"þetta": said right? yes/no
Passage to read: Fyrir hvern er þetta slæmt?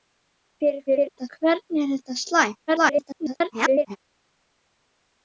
yes